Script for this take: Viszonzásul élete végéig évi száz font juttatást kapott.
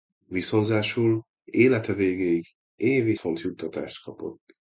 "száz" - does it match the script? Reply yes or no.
no